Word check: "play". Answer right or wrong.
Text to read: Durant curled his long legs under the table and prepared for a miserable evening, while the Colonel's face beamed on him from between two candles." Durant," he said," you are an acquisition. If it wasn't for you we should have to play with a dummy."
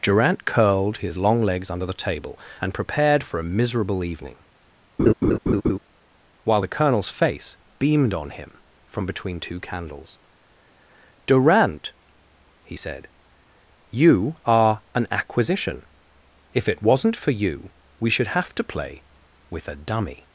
right